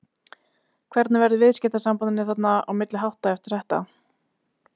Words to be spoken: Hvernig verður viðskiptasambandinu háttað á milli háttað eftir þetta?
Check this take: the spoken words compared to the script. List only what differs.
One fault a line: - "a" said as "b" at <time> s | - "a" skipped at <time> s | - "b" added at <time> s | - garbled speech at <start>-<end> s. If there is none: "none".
- "háttað" said as "þarna" at 2.3 s